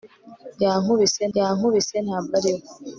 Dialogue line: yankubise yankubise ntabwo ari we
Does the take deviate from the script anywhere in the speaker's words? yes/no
no